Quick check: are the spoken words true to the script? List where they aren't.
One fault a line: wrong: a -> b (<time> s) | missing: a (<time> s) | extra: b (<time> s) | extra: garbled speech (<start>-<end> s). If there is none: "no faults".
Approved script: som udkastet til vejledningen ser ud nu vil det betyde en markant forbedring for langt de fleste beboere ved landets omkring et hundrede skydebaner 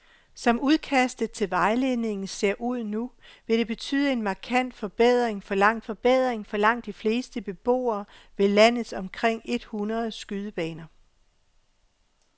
extra: forbedring for langt (5.8 s)